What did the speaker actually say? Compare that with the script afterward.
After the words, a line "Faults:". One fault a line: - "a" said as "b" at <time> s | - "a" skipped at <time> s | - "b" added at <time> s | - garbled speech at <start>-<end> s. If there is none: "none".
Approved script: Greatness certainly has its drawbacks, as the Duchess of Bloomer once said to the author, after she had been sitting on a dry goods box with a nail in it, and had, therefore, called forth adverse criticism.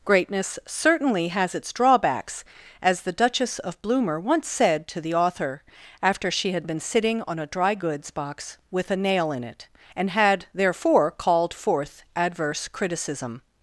Greatness certainly has its drawbacks, as the Duchess of Bloomer once said to the author, after she had been sitting on a dry goods box with a nail in it, and had, therefore, called forth adverse criticism.
Faults:
none